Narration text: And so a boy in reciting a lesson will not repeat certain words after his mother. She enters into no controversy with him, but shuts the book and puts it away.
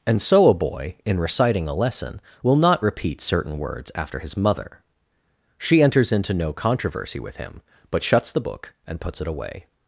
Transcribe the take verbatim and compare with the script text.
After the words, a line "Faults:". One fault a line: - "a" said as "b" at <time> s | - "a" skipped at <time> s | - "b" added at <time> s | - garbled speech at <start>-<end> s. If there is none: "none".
And so a boy in reciting a lesson will not repeat certain words after his mother. She enters into no controversy with him, but shuts the book and puts it away.
Faults:
none